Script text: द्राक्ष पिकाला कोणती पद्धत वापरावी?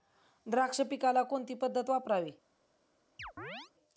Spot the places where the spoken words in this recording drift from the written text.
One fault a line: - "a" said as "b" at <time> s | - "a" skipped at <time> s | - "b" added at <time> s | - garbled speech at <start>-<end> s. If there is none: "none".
none